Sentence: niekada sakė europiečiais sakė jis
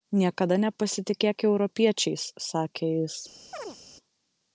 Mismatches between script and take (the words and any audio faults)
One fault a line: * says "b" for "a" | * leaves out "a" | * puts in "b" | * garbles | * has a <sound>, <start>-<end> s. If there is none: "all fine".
* says "nepasitikėk" for "sakė"
* has a chirp, 3.5-3.8 s